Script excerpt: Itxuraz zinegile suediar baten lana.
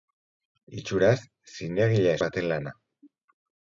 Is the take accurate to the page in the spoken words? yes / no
no